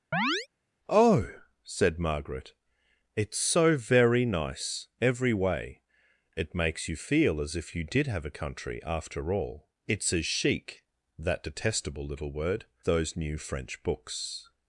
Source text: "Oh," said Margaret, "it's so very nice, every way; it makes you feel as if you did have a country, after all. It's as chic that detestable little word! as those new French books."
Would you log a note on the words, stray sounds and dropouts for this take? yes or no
yes